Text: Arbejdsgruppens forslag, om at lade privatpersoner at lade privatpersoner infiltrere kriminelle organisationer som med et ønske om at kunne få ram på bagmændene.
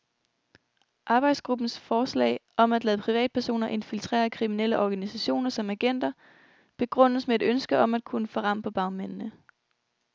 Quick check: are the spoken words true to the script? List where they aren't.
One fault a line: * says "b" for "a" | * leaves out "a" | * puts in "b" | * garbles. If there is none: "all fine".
* leaves out "at lade privatpersoner"
* puts in "agenter begrundes"